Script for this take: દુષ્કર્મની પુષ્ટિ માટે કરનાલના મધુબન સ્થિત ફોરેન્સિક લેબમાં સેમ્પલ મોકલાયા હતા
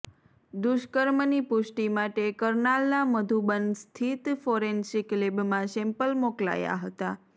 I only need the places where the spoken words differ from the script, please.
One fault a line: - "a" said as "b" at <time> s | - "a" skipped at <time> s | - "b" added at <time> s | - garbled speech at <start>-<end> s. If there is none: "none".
none